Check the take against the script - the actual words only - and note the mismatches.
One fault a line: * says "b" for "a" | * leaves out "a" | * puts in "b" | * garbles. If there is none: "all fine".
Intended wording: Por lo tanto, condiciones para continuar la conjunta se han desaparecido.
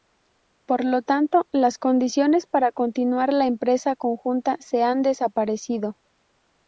* puts in "las"
* puts in "empresa"